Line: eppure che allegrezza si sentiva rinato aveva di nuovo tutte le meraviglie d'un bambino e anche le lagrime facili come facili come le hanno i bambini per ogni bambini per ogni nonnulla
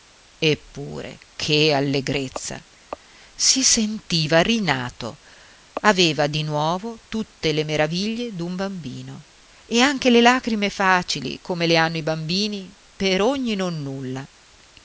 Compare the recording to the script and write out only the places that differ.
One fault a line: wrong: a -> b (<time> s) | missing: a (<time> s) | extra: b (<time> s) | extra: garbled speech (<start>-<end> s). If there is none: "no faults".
missing: facili come (11.7 s)
missing: bambini per ogni (13.5 s)